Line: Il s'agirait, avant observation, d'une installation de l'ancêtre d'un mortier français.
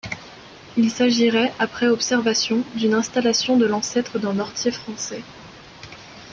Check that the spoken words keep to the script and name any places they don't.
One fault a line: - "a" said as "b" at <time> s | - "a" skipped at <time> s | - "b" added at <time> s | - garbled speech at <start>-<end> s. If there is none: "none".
- "avant" said as "après" at 1.6 s